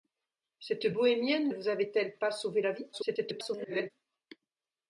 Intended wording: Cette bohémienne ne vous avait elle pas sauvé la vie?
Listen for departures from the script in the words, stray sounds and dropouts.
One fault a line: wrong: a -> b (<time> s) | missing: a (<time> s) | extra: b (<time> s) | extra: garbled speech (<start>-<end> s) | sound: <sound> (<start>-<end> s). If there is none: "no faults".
missing: ne (1.5 s)
extra: garbled speech (2.9-3.9 s)